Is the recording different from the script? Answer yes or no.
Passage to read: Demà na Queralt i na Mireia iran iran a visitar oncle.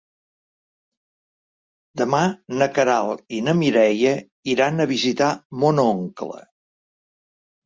yes